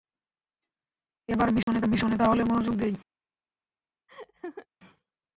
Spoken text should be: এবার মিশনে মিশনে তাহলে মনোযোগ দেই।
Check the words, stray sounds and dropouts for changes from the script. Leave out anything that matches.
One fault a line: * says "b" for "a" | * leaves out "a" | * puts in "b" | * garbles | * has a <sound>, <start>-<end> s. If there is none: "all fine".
* has a dropout, 1.6-1.7 s
* has a laugh, 4.1-4.7 s